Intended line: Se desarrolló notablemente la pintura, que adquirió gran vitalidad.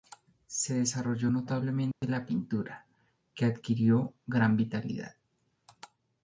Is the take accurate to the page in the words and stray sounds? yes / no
no